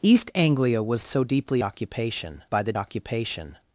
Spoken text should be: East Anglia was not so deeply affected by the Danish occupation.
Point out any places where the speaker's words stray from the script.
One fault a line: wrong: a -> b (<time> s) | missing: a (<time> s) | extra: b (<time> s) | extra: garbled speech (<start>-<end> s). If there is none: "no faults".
missing: not (1.0 s)
wrong: affected -> occupation (1.6 s)
missing: Danish (2.7 s)